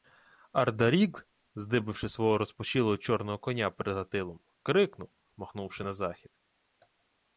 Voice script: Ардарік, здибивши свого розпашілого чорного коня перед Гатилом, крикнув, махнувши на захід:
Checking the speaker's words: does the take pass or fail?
pass